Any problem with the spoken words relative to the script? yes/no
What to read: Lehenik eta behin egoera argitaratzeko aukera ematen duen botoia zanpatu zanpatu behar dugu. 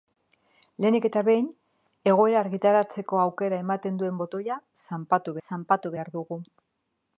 no